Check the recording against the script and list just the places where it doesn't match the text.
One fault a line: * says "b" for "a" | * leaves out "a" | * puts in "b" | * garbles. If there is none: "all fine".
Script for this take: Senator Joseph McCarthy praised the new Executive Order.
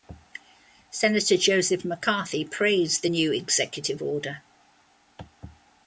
all fine